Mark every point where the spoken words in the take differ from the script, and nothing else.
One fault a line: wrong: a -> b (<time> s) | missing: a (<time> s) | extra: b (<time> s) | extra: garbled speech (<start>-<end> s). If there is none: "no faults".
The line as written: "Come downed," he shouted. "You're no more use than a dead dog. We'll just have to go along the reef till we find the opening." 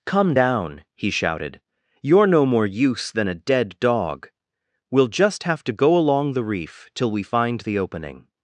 wrong: downed -> down (0.3 s)